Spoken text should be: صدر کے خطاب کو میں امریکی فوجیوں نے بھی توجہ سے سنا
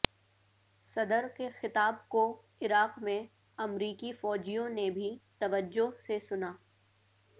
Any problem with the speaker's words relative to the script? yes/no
yes